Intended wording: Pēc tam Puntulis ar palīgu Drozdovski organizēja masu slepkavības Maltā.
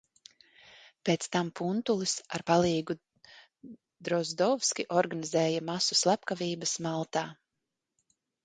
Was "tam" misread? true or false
false